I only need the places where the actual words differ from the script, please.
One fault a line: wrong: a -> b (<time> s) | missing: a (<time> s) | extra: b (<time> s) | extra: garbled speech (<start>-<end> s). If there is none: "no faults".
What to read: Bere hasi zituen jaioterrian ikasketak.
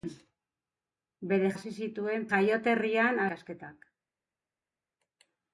no faults